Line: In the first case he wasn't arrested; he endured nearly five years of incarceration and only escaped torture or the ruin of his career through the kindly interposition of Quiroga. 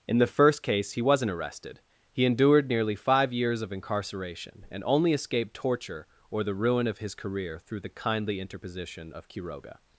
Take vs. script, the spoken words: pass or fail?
pass